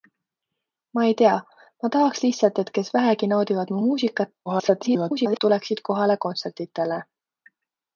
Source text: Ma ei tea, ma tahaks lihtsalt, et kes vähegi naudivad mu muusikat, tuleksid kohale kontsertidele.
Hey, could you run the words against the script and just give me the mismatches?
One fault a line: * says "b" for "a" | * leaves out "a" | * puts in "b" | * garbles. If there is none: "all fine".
* garbles